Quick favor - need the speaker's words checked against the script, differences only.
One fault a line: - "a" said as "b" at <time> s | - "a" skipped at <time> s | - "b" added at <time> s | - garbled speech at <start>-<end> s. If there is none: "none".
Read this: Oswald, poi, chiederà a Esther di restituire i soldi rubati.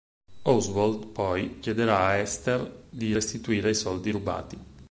none